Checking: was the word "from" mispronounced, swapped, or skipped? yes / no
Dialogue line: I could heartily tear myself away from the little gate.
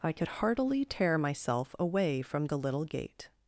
no